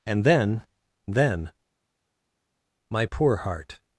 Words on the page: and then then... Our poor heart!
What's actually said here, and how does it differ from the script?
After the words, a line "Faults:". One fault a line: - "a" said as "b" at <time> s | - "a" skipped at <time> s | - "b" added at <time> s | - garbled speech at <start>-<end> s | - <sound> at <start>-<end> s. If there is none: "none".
and then then... My poor heart!
Faults:
- "Our" said as "My" at 2.9 s